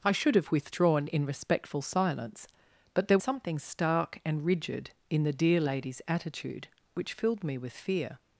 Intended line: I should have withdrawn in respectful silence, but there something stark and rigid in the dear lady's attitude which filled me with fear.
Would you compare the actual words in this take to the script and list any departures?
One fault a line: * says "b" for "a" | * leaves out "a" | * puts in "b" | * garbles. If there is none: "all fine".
all fine